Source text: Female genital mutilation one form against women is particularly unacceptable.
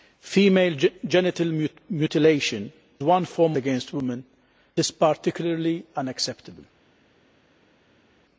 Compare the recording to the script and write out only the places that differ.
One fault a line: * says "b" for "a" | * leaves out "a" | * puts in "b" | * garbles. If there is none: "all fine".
all fine